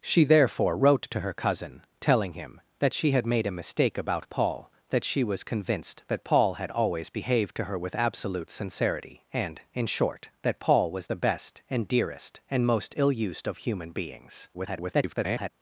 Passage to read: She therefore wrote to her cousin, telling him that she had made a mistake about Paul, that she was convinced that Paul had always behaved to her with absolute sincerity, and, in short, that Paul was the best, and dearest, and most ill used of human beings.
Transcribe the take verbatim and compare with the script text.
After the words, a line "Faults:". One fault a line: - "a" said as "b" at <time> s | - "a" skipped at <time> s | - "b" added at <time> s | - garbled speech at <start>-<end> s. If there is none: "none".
She therefore wrote to her cousin, telling him that she had made a mistake about Paul, that she was convinced that Paul had always behaved to her with absolute sincerity, and, in short, that Paul was the best, and dearest, and most ill used of human beings. [garbled]
Faults:
- garbled speech at 14.5-15.5 s